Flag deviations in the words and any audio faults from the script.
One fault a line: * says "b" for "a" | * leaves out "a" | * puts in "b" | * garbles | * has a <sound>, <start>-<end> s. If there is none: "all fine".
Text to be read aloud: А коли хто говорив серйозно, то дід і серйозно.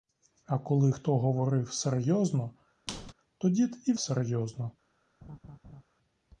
* has a squeak, 2.9-3.1 s
* has a laugh, 5.2-5.8 s